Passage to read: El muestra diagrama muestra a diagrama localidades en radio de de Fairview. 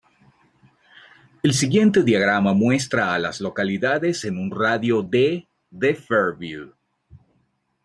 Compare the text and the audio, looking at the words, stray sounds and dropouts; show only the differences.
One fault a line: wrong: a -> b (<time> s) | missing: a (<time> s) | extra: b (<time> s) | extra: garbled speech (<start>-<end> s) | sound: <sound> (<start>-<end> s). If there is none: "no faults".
wrong: muestra -> siguiente (1.5 s)
wrong: diagrama -> las (3.2 s)
extra: un (4.4 s)